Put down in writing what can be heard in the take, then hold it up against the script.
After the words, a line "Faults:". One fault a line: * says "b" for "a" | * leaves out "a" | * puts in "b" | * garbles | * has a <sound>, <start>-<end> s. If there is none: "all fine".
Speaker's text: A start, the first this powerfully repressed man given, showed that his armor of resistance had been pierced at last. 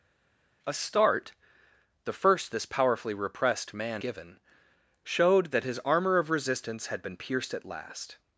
A start, the first this powerfully repressed man given, showed that his armor of resistance had been pierced at last.
Faults:
all fine